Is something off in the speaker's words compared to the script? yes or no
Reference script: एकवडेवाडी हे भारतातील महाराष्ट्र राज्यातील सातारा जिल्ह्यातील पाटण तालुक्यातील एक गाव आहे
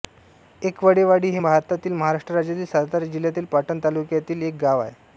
no